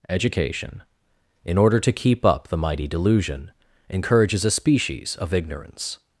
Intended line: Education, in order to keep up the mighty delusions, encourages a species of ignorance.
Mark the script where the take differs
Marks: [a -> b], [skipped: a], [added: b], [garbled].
Education, in order to keep up the mighty [delusions, -> delusion] encourages a species of ignorance.